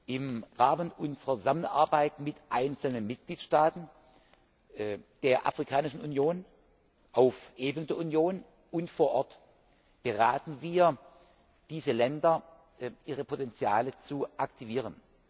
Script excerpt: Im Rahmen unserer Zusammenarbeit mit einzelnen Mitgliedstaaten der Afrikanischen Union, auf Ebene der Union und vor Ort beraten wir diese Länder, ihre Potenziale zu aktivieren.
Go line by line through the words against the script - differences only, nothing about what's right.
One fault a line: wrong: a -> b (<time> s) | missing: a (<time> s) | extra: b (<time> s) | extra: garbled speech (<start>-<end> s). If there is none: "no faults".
no faults